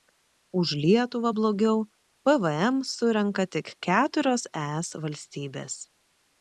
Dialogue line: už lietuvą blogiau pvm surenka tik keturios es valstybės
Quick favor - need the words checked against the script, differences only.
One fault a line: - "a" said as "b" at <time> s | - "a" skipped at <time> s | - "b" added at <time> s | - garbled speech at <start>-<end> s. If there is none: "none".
none